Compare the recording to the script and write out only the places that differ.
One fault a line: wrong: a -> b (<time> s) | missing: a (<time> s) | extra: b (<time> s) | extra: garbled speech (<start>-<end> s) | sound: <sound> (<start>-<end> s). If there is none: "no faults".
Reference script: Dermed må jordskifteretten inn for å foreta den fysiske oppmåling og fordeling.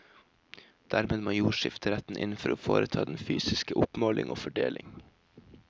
no faults